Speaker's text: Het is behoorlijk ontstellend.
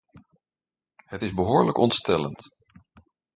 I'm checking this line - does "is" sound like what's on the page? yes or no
yes